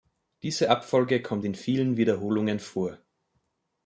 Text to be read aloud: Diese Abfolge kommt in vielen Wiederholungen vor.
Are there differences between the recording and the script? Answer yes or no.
no